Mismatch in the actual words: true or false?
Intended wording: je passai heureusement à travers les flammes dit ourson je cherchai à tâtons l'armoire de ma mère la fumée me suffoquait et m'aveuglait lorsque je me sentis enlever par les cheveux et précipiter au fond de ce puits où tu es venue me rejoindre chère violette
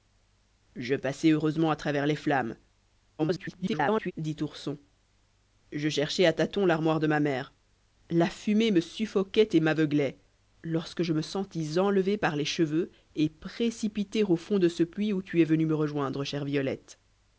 true